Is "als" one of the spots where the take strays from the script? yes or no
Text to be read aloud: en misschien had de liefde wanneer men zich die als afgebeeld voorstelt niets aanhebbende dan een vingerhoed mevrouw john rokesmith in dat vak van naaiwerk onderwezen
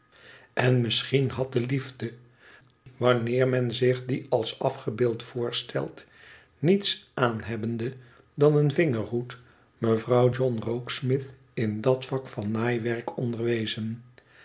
no